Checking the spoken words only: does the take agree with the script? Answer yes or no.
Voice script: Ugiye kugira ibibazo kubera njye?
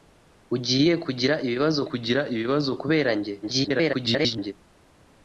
no